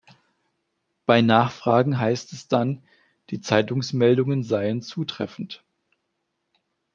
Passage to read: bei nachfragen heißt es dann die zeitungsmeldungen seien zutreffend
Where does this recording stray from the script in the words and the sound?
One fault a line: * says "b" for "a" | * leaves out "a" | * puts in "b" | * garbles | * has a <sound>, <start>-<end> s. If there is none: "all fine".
all fine